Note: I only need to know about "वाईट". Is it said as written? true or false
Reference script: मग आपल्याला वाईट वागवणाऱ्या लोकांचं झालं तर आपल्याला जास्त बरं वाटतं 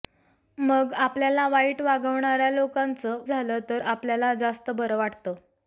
true